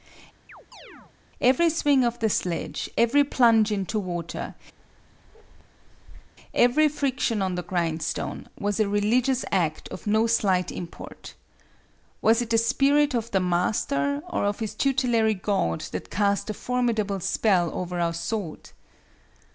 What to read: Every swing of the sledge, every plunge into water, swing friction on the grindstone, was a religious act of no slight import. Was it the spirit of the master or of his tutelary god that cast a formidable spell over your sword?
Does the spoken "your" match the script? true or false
false